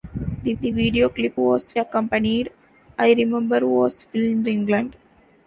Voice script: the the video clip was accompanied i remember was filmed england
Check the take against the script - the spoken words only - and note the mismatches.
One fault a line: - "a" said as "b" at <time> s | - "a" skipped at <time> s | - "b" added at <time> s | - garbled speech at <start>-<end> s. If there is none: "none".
none